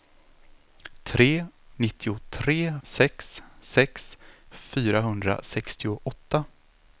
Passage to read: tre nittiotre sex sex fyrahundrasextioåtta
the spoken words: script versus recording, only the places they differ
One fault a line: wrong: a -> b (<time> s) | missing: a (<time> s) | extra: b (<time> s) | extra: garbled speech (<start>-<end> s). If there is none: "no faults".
no faults